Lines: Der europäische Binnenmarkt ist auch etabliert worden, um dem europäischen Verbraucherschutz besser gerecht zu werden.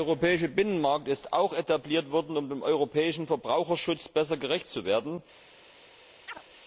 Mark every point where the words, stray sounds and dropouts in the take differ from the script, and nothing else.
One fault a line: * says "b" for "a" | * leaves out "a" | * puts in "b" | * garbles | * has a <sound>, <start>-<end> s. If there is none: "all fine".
* has a chirp, 6.3-6.4 s